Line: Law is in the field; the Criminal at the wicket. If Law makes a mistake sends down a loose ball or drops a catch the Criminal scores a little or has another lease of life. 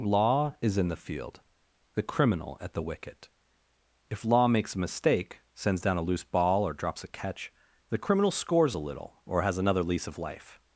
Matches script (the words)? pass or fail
pass